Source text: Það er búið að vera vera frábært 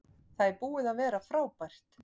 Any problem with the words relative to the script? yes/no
yes